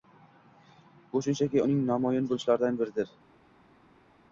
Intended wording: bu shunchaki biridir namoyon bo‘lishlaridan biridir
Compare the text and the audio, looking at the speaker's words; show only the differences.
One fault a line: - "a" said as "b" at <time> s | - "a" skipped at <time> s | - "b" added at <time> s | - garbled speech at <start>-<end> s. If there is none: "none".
- "biridir" said as "uning" at 1.6 s